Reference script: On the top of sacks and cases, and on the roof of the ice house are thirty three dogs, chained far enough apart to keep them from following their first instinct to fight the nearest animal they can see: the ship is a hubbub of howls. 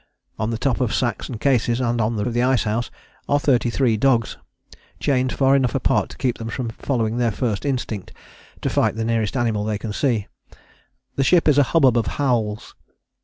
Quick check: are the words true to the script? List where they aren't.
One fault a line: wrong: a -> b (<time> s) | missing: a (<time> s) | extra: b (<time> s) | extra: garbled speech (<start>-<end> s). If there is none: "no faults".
missing: roof (2.2 s)